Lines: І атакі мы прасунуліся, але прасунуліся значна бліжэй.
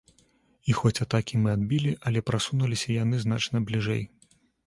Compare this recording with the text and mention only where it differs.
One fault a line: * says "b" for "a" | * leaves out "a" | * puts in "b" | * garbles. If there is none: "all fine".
* puts in "хоць"
* says "адбілі" for "прасунуліся"
* puts in "яны"